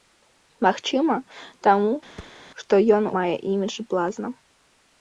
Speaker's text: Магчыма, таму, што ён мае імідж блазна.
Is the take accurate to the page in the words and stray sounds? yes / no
no